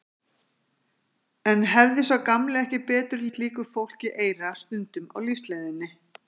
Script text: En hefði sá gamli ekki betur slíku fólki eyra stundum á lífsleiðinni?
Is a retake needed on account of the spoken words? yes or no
no